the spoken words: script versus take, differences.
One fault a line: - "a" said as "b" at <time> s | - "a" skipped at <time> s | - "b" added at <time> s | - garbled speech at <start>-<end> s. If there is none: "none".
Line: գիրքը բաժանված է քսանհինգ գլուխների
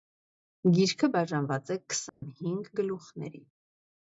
none